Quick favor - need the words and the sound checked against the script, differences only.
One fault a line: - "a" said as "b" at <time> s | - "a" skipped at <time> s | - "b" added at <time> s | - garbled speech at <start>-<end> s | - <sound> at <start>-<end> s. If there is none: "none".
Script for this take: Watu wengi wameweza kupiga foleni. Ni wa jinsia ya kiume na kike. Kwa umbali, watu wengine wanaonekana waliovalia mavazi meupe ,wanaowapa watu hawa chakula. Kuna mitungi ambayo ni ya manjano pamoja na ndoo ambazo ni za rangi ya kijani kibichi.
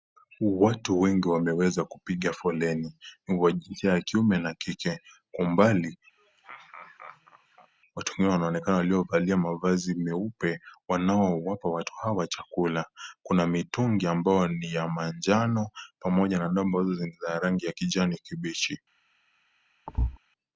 - laugh at 6.2-7.7 s
- thud at 19.9-20.2 s